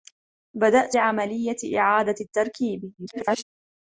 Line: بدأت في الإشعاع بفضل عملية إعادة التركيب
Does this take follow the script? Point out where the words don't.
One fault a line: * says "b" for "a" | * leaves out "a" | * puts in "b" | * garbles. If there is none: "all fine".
* leaves out "في الإشعاع بفضل"
* garbles